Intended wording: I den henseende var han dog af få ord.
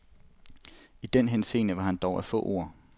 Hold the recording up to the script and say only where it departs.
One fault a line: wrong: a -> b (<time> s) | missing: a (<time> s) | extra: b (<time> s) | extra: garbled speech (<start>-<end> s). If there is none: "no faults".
no faults